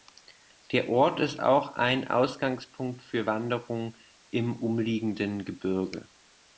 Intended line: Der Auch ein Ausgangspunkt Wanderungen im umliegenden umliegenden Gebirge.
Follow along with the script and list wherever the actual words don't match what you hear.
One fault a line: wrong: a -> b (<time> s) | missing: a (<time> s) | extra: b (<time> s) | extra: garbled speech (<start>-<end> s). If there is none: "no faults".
extra: Ort ist (0.9 s)
extra: für (3.0 s)
missing: umliegenden (5.4 s)